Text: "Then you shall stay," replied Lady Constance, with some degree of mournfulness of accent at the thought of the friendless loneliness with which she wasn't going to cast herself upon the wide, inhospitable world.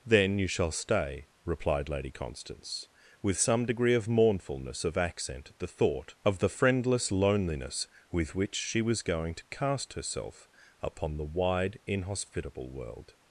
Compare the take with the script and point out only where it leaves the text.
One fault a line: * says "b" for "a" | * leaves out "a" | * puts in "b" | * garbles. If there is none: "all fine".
* says "was" for "wasn't"